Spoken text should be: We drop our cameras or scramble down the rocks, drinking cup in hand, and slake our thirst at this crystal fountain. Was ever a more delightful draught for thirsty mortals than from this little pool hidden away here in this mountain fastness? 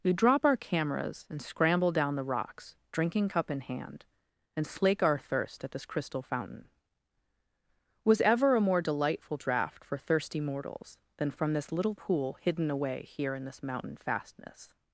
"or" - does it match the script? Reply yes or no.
no